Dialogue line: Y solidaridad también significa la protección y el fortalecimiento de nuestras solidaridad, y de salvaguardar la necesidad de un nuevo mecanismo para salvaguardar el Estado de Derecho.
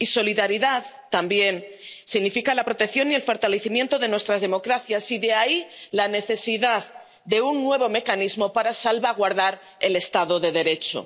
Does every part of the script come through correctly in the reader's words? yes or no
no